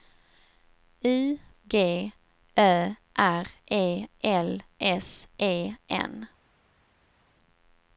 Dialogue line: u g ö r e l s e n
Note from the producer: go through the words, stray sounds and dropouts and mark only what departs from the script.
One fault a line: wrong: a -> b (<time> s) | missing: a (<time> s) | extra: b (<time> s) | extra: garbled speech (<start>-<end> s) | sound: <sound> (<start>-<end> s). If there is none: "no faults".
no faults